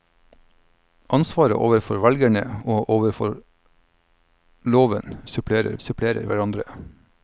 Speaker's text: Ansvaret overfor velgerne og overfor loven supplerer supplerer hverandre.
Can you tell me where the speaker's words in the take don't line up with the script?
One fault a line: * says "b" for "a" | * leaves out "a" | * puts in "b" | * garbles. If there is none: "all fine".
all fine